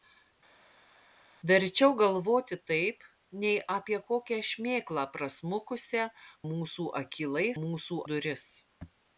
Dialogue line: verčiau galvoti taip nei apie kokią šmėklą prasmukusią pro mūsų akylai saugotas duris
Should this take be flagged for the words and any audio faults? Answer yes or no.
yes